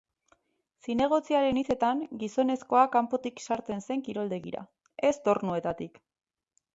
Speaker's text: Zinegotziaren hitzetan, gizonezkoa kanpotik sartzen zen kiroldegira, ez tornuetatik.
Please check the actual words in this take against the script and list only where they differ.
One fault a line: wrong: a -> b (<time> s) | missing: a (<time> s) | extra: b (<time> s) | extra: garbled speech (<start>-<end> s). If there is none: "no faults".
no faults